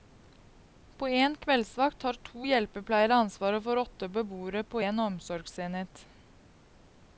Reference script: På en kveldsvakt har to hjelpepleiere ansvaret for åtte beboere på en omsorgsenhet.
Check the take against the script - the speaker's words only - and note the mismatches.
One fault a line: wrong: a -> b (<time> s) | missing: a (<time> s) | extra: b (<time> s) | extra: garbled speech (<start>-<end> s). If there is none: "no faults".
no faults